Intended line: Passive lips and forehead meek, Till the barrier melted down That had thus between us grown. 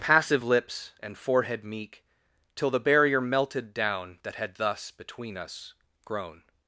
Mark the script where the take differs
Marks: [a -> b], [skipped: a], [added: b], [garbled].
Passive lips and forehead meek, Till the barrier melted down That had thus between us grown.